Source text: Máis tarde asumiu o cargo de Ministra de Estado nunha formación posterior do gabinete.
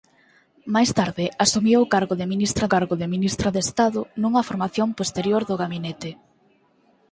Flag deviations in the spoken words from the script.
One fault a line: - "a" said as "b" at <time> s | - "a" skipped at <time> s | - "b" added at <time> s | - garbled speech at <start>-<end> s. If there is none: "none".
- "cargo de Ministra" added at 2.7 s